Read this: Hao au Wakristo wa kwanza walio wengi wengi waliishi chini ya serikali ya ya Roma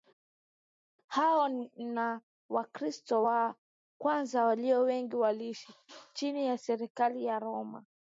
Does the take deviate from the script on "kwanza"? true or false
false